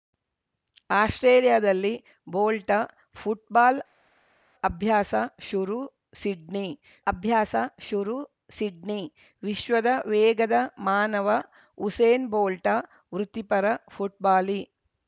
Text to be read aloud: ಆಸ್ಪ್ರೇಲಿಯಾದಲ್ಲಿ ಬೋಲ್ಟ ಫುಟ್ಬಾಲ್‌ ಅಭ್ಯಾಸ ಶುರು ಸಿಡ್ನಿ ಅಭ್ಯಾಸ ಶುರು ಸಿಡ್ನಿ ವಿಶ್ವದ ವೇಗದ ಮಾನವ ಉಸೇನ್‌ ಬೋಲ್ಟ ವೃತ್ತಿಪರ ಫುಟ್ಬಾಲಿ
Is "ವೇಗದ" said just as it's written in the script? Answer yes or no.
yes